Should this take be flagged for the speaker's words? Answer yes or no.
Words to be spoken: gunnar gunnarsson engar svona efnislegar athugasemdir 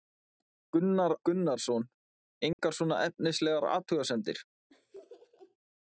no